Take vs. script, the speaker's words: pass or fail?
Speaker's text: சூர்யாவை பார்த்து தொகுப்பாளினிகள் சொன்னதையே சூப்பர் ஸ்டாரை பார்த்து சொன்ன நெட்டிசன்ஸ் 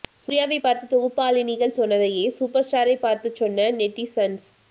pass